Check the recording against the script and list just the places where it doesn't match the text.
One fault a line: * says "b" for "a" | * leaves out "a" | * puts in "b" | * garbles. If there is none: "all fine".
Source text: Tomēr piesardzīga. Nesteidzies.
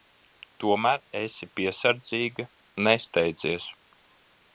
* puts in "esi"